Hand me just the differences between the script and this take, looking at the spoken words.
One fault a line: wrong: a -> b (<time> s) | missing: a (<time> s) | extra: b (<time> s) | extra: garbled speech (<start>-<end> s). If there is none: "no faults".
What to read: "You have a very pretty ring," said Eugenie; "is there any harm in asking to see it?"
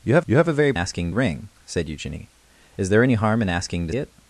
extra: you have (0.2 s)
wrong: pretty -> asking (0.7 s)
missing: see (3.9 s)